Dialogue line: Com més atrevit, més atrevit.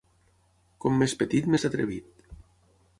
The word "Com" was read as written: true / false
true